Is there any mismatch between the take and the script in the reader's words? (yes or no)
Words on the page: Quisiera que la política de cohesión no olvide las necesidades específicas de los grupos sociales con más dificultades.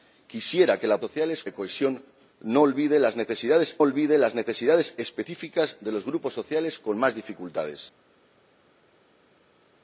yes